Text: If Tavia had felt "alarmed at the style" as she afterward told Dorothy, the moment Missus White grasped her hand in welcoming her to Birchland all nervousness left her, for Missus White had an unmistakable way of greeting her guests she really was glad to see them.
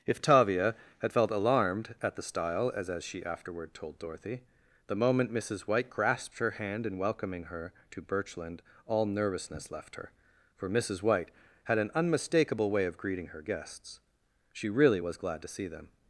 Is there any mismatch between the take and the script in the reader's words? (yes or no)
yes